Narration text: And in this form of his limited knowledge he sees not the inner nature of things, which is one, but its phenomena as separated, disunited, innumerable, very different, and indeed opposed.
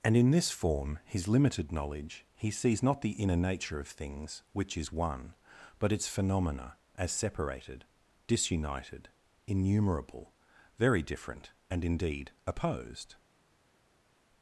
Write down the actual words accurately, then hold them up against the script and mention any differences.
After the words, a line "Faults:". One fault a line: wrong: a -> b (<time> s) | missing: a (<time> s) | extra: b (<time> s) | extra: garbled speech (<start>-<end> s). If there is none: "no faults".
And in this form his limited knowledge he sees not the inner nature of things, which is one, but its phenomena as separated, disunited, innumerable, very different, and indeed opposed.
Faults:
missing: of (1.0 s)